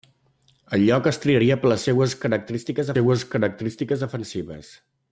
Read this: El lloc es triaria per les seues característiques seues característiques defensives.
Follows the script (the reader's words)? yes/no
yes